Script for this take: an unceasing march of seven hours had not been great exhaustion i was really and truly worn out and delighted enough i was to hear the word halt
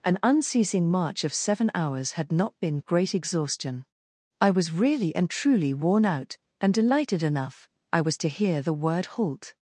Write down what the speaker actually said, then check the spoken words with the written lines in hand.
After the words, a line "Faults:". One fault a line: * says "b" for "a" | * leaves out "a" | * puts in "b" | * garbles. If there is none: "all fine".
an unceasing march of seven hours had not been great exhaustion i was really and truly worn out and delighted enough i was to hear the word halt
Faults:
all fine